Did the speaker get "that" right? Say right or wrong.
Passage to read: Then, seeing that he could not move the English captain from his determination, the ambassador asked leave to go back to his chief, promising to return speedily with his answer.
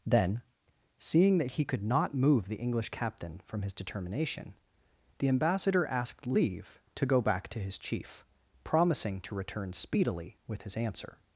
right